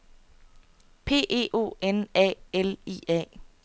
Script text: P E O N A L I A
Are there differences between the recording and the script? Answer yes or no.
no